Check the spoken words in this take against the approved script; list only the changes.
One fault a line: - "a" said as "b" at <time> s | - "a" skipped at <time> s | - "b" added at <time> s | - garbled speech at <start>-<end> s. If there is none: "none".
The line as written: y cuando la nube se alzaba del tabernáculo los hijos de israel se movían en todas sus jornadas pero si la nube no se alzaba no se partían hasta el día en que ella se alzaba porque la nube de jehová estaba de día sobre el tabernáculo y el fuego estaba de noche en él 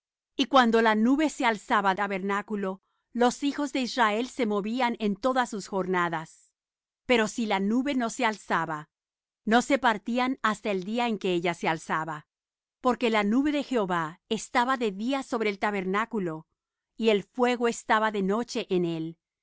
- "del" skipped at 1.9 s